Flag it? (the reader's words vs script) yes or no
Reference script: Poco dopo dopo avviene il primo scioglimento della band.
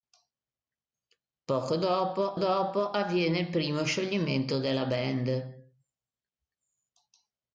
no